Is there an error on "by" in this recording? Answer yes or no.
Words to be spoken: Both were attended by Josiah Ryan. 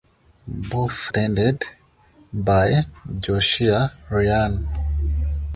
no